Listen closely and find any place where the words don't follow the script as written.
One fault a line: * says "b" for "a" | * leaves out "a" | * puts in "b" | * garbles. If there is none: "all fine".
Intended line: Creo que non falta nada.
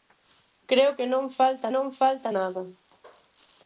* puts in "non falta"